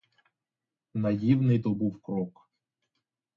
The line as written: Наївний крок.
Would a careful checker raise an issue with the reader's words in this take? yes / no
yes